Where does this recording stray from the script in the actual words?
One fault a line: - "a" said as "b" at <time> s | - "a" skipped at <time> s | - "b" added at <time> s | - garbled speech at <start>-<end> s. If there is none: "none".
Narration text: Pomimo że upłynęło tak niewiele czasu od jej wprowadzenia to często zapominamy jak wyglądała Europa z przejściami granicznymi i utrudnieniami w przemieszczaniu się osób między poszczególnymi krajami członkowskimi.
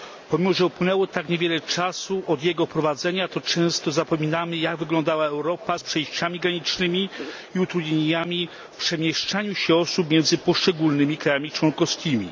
- "jej" said as "jego" at 2.4 s